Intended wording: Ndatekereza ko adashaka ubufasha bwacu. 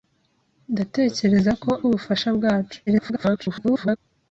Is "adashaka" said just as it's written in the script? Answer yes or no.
no